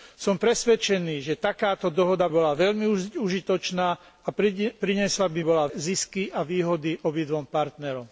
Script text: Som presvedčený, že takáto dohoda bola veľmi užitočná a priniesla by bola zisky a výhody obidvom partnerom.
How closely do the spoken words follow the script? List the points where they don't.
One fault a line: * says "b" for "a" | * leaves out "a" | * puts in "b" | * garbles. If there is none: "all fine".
all fine